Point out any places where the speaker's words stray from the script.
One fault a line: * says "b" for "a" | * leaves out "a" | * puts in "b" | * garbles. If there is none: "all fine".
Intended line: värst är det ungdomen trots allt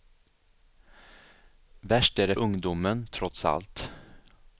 all fine